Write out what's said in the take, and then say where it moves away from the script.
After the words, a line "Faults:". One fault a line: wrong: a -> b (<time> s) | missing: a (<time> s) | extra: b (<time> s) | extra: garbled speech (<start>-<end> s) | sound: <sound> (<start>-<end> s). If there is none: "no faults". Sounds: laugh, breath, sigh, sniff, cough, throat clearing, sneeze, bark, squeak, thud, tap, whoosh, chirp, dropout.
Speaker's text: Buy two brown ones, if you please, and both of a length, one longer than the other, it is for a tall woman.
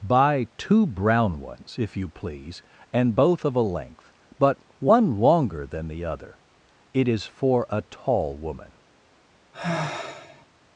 Buy two brown ones, if you please, and both of a length, but one longer than the other, it is for a tall woman.
Faults:
extra: but (4.4 s)
sound: sigh (9.5-10.5 s)